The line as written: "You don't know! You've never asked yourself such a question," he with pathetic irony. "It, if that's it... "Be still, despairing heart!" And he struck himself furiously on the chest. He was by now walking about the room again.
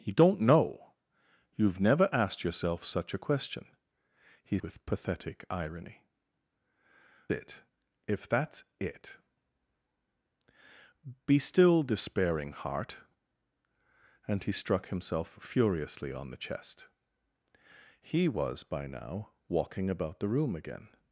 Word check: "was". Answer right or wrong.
right